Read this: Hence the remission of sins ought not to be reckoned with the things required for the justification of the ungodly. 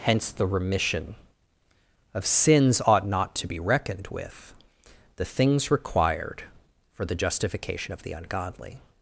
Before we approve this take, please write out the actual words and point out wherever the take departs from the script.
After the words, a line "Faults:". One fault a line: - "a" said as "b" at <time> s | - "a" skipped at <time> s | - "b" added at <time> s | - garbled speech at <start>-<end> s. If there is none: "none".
Hence the remission of sins ought not to be reckoned with the things required for the justification of the ungodly.
Faults:
none